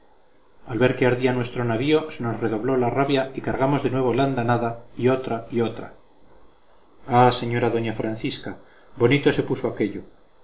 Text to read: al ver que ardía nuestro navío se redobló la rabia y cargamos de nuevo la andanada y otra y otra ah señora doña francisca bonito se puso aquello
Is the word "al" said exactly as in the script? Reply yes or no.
yes